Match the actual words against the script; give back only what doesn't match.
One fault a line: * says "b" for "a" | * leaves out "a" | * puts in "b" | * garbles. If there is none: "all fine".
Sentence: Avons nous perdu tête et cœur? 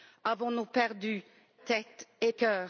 all fine